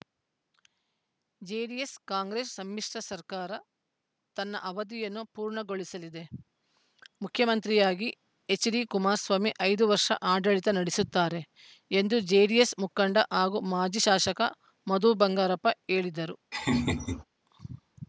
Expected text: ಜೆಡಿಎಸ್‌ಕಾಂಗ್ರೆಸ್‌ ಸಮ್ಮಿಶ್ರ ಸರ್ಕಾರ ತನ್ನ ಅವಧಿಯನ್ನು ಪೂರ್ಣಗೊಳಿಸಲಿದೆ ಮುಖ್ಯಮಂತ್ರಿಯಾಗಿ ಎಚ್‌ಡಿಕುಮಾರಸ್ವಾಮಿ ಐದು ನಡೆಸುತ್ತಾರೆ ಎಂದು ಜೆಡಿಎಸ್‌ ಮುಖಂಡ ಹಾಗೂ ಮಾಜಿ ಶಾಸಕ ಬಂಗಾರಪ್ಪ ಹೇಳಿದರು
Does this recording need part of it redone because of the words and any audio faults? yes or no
yes